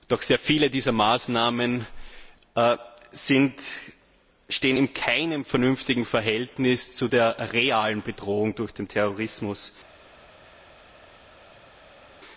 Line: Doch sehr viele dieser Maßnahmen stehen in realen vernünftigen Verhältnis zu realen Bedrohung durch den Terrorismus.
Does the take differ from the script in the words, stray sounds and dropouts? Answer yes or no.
yes